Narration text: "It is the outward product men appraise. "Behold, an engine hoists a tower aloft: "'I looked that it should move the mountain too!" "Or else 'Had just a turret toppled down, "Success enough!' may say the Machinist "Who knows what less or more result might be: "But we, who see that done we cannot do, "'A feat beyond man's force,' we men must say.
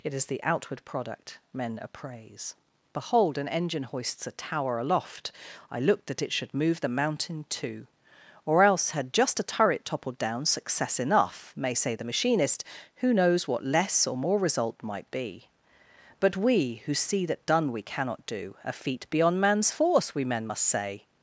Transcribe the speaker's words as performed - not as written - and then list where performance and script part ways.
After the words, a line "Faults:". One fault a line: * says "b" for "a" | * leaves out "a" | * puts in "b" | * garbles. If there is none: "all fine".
"It is the outward product men appraise. "Behold, an engine hoists a tower aloft: "'I looked that it should move the mountain too!" "Or else 'Had just a turret toppled down, "Success enough!' may say the Machinist "Who knows what less or more result might be: "But we, who see that done we cannot do, "'A feat beyond man's force,' we men must say.
Faults:
all fine